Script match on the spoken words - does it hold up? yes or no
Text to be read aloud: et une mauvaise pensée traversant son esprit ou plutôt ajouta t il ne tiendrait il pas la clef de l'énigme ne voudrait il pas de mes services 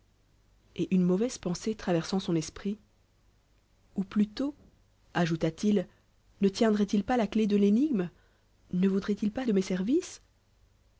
yes